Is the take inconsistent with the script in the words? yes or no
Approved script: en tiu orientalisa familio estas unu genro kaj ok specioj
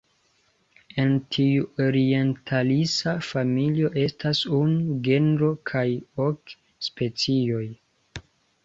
no